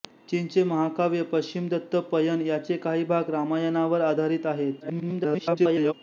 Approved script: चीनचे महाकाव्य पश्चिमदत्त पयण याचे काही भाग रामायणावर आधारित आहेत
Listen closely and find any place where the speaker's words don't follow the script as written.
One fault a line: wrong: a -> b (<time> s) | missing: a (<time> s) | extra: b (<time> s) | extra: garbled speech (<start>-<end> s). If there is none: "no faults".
extra: garbled speech (4.8-5.9 s)